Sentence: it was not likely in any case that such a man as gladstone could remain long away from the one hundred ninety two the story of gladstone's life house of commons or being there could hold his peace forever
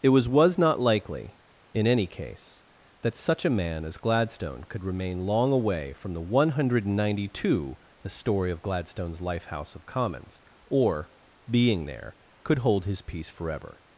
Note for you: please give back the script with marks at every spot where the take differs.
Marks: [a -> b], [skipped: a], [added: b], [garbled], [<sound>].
it was [added: was] not likely in any case that such a man as gladstone could remain long away from the one hundred ninety two the story of gladstone's life house of commons or being there could hold his peace forever